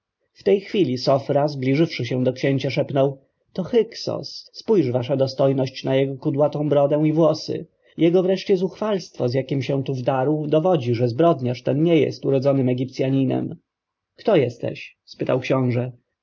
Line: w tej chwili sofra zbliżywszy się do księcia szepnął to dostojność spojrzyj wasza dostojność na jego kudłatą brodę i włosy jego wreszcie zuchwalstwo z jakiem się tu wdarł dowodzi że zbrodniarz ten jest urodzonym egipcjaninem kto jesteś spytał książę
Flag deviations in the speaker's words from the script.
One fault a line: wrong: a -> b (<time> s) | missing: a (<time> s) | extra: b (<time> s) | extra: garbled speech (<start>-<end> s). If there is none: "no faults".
wrong: dostojność -> hyksos (3.6 s)
extra: nie (11.8 s)